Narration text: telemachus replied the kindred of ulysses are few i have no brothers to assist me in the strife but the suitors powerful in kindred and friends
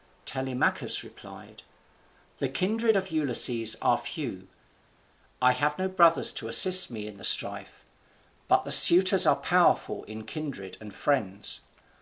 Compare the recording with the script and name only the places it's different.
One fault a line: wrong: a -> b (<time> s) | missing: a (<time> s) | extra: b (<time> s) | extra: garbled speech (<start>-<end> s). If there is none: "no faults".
extra: are (9.2 s)